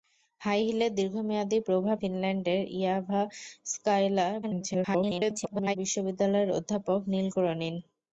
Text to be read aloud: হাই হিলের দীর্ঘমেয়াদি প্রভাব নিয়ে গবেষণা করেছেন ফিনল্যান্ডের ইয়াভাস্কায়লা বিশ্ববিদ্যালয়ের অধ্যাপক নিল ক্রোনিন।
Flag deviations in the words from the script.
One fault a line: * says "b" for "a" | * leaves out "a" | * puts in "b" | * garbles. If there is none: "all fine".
* leaves out "নিয়ে গবেষণা করেছেন"
* garbles